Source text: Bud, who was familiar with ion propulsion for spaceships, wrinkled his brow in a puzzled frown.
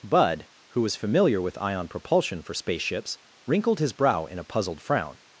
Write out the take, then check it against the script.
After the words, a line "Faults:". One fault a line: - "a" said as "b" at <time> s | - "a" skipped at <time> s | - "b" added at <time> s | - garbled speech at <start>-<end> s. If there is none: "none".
Bud, who was familiar with ion propulsion for spaceships, wrinkled his brow in a puzzled frown.
Faults:
none